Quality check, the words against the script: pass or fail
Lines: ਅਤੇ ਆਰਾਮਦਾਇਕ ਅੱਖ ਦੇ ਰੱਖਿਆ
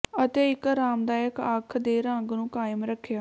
fail